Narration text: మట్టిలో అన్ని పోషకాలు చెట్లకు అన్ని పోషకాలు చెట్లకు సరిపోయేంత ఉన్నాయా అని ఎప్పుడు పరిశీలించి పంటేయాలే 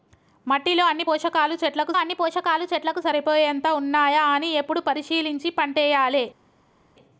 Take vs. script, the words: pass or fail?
pass